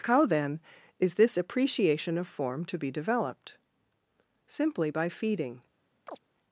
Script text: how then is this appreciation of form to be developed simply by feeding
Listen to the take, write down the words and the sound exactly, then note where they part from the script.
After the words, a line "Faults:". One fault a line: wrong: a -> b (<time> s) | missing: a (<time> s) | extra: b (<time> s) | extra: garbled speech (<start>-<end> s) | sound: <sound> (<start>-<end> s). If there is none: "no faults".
how then is this appreciation of form to be developed simply by feeding
Faults:
sound: chirp (6.1-6.2 s)